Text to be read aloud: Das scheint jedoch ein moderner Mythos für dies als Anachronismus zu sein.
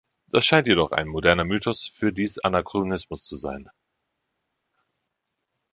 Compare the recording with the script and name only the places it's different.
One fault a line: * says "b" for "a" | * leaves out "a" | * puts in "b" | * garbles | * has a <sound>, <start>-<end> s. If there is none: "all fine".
* leaves out "als"